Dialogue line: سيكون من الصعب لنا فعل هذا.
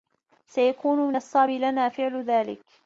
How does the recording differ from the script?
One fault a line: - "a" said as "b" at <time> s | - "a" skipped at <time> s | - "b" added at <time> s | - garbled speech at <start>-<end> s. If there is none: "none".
- "هذا" said as "ذلك" at 2.2 s